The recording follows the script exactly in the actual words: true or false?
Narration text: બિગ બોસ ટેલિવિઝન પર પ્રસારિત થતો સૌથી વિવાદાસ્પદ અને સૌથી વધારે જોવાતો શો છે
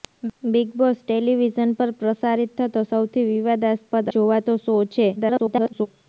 false